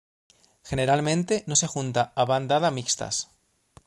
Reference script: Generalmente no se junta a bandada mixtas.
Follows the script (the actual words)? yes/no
yes